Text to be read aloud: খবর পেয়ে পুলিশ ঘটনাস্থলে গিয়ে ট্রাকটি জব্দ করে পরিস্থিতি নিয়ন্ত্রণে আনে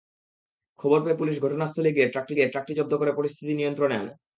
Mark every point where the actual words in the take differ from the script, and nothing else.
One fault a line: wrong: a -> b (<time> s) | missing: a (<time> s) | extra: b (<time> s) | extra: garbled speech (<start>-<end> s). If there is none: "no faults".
extra: গিয়ে ট্রাকটি (2.4 s)